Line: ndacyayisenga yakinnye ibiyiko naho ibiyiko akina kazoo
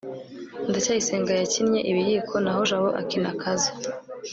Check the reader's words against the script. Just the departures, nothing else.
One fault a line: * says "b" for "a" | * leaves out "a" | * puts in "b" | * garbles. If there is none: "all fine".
* says "jabo" for "ibiyiko"